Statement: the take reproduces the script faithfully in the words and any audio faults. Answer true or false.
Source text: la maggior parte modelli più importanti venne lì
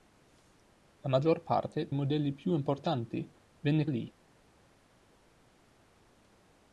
true